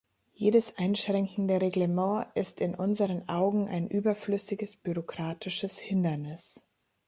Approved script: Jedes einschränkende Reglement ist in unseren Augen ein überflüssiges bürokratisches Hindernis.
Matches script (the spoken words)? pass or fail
pass